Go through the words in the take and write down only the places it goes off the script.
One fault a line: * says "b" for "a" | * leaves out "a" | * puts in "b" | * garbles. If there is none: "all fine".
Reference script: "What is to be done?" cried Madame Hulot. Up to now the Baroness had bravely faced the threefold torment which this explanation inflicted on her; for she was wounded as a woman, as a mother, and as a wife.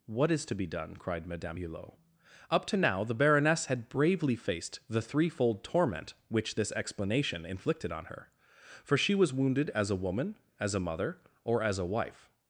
* says "or" for "and"